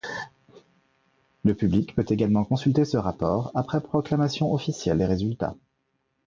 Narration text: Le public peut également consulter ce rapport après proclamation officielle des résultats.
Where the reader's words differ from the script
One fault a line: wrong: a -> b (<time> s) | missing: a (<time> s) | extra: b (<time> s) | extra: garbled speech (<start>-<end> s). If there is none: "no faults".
no faults